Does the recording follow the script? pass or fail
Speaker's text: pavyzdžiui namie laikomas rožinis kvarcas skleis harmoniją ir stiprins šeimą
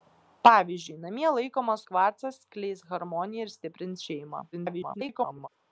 fail